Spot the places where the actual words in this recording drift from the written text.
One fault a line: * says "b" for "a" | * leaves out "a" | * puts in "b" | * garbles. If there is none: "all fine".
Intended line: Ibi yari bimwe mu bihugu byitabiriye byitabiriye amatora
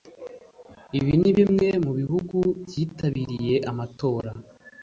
* says "ni" for "yari"
* leaves out "byitabiriye"